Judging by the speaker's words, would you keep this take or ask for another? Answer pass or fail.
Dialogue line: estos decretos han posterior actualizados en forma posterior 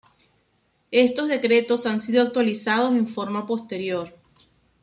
fail